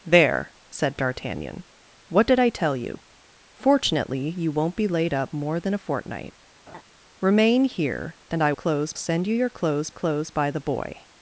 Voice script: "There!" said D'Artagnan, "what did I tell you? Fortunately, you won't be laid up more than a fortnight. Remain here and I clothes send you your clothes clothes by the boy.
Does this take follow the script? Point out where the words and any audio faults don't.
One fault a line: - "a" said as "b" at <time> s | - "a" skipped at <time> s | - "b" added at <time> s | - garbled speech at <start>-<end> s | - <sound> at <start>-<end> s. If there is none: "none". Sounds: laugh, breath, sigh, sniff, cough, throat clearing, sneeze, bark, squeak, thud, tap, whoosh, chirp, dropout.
- laugh at 6.7-6.8 s